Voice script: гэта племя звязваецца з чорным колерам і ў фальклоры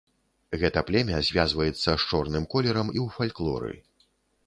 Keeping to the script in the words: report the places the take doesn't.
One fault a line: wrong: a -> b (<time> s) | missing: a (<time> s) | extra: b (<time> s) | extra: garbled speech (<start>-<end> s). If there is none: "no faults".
no faults